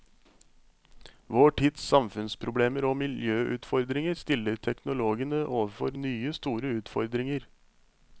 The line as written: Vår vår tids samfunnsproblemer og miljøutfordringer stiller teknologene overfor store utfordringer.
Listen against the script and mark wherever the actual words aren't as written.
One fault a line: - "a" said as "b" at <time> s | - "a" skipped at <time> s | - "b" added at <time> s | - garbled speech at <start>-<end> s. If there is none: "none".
- "vår" skipped at 1.5 s
- "nye" added at 6.0 s